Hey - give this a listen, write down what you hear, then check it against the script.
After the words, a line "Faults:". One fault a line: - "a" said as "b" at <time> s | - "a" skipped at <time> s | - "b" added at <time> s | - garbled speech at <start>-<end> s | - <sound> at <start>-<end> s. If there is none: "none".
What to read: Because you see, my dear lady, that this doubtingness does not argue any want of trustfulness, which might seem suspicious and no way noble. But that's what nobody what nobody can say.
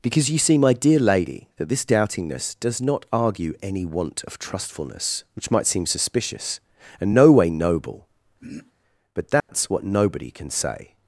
Because you see, my dear lady, that this doubtingness does not argue any want of trustfulness, which might seem suspicious and no way noble. But that's what nobody can say.
Faults:
- throat clearing at 8.4-8.7 s
- dropout at 9.4-9.5 s
- "what nobody" skipped at 10.3 s